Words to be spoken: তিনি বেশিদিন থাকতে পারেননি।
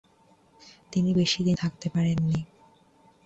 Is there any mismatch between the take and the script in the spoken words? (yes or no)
no